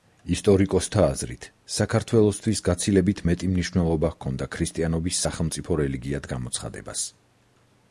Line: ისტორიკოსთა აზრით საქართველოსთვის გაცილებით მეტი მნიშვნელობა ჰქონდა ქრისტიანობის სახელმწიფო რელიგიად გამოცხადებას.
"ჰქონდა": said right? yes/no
yes